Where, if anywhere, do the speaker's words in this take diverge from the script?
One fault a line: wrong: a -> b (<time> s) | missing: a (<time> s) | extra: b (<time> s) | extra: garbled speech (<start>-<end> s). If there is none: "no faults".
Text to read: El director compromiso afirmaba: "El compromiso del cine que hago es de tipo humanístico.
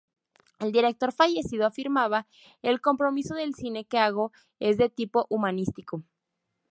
wrong: compromiso -> fallecido (1.1 s)